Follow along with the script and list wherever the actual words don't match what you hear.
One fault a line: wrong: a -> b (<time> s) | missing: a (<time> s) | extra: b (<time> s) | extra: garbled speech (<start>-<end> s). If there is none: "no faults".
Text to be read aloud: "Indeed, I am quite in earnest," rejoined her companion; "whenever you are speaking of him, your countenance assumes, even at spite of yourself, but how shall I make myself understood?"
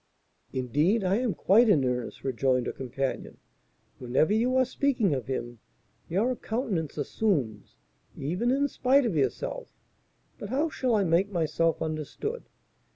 wrong: at -> in (8.5 s)